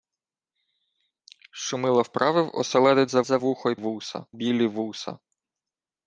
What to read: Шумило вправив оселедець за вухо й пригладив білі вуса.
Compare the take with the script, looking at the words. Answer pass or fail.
fail